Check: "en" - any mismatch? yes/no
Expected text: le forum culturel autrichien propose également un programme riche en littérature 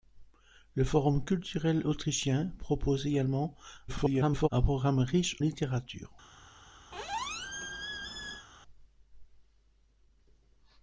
yes